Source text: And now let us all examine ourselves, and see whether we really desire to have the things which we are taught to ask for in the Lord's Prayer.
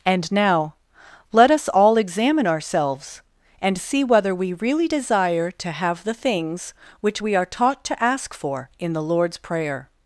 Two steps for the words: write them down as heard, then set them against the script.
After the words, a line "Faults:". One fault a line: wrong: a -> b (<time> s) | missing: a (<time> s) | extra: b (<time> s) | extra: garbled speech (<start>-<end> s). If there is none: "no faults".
And now let us all examine ourselves, and see whether we really desire to have the things which we are taught to ask for in the Lord's Prayer.
Faults:
no faults